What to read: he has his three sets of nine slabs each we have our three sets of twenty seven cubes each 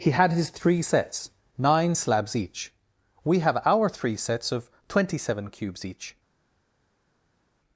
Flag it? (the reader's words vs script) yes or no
yes